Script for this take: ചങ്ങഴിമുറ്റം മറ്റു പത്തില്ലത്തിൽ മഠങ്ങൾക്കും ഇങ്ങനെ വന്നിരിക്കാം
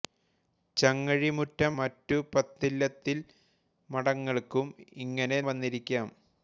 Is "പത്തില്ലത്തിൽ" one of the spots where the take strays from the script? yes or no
no